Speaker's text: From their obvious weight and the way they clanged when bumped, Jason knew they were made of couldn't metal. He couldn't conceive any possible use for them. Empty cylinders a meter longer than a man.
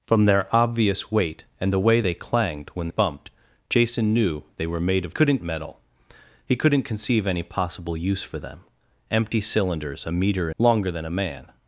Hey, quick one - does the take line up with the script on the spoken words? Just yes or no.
yes